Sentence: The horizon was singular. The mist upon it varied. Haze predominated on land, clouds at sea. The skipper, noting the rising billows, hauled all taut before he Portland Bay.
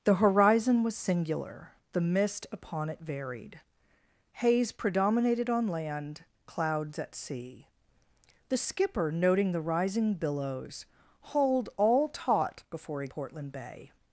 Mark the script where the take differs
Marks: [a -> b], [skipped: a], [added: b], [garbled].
The horizon was singular. The mist upon it varied. Haze predominated on land, clouds at sea. The skipper, noting the rising billows, hauled all taut before he Portland Bay.